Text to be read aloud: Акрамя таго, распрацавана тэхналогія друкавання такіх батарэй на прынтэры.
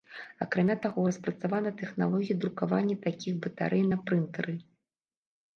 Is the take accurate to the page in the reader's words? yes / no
yes